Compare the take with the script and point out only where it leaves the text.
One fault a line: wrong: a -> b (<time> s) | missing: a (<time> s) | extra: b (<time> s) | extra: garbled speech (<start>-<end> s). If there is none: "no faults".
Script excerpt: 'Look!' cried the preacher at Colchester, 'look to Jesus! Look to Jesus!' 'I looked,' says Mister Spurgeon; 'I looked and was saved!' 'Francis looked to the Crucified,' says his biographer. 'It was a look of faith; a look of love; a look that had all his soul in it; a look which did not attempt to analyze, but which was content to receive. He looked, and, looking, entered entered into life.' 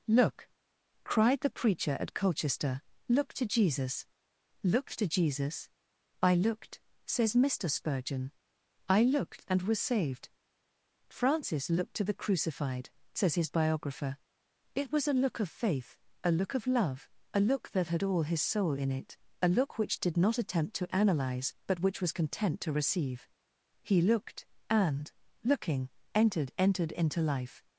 no faults